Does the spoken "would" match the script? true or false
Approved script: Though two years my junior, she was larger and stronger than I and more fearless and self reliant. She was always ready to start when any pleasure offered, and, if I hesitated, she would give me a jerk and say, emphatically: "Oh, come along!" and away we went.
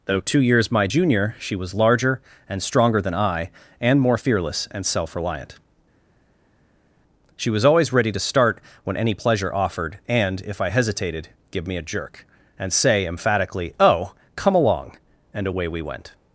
false